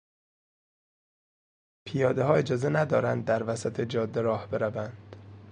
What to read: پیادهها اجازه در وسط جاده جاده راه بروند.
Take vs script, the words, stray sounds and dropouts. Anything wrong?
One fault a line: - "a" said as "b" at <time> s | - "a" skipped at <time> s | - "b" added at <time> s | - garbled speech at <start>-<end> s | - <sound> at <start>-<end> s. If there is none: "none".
- "ندارند" added at 2.7 s
- "جاده" skipped at 4.2 s